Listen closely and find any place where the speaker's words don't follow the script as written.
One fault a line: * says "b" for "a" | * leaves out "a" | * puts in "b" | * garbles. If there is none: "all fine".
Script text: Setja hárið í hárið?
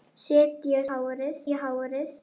all fine